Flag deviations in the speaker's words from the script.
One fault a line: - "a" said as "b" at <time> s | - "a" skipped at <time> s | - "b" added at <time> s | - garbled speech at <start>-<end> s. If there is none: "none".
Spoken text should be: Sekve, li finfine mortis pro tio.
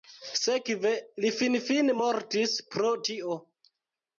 none